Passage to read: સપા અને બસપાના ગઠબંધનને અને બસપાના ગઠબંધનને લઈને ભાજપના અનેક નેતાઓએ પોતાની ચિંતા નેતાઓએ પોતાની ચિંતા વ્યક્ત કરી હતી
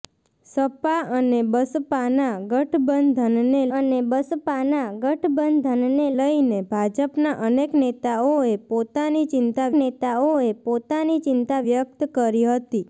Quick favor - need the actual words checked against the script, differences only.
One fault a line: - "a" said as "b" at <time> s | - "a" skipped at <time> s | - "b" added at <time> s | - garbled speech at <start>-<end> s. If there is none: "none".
none